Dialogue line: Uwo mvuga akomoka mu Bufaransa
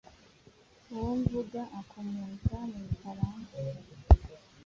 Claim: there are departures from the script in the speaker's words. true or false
false